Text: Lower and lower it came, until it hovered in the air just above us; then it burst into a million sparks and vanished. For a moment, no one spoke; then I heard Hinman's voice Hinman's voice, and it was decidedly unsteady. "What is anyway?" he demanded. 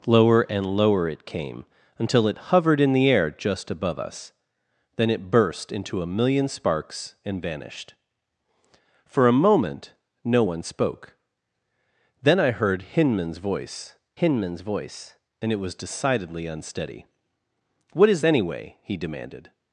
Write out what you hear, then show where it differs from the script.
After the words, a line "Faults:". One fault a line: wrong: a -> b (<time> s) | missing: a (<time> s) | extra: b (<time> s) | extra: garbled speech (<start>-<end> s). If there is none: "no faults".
Lower and lower it came, until it hovered in the air just above us; then it burst into a million sparks and vanished. For a moment, no one spoke; then I heard Hinman's voice Hinman's voice, and it was decidedly unsteady. "What is anyway?" he demanded.
Faults:
no faults